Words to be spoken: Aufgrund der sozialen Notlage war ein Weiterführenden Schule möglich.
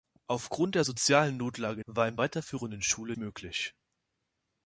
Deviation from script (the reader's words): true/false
false